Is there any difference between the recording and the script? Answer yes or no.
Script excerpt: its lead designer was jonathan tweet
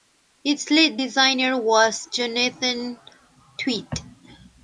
no